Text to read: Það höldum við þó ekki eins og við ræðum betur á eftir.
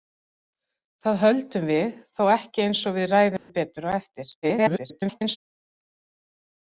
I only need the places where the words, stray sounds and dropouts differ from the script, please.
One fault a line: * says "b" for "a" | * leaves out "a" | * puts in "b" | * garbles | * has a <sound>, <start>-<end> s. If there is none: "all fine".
* has a dropout, 3.4-3.5 s
* garbles